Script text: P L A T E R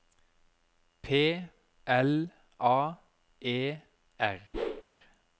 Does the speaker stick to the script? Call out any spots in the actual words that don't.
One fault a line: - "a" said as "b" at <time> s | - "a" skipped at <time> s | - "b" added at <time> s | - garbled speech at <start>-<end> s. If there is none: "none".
- "T" skipped at 3.0 s